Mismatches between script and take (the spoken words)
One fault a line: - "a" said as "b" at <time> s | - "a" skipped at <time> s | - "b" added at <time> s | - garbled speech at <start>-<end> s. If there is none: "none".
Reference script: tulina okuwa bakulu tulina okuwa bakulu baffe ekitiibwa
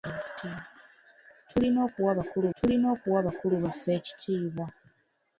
none